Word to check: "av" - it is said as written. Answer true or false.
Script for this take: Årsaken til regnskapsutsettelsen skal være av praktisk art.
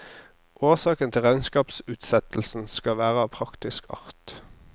true